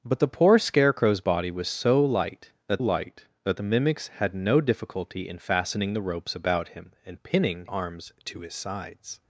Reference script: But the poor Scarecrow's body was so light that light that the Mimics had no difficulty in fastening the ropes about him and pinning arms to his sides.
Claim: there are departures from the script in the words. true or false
false